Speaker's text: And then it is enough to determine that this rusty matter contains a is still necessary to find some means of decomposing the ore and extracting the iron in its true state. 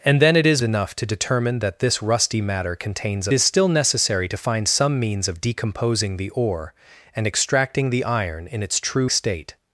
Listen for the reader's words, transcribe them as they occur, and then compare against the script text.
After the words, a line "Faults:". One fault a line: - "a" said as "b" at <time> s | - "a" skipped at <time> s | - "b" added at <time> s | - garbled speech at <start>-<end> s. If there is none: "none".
And then it is enough to determine that this rusty matter contains a is still necessary to find some means of decomposing the ore and extracting the iron in its true state.
Faults:
none